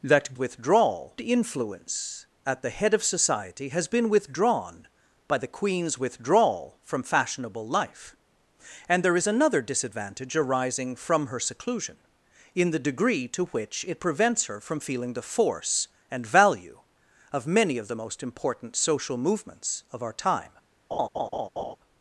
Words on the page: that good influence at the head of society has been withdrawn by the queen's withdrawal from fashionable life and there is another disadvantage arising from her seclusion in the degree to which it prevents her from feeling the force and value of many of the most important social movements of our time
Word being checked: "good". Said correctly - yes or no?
no